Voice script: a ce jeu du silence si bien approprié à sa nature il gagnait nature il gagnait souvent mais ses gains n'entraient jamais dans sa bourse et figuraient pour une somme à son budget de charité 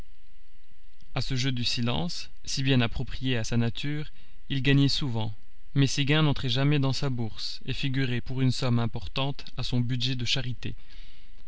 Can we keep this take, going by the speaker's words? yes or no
no